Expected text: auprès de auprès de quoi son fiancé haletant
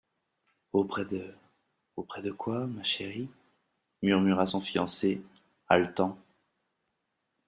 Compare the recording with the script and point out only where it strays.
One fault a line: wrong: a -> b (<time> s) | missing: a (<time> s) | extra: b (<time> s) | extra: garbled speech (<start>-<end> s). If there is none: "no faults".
extra: ma chérie murmura (2.6 s)